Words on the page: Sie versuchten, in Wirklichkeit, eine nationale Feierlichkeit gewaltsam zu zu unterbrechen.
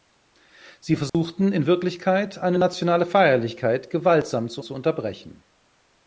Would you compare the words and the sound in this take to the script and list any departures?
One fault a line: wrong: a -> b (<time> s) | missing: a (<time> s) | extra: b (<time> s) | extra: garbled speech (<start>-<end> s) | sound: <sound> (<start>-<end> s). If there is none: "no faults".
sound: dropout (1.1-1.1 s)